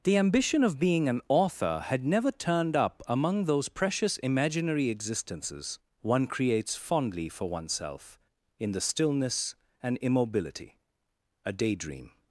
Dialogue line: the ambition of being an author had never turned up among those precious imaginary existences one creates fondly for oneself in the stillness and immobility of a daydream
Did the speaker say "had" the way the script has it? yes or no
yes